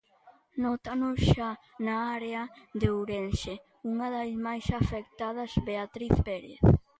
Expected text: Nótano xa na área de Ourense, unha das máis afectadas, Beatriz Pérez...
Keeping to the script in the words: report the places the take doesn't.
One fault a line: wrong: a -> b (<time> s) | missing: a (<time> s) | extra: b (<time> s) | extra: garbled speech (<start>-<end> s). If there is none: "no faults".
no faults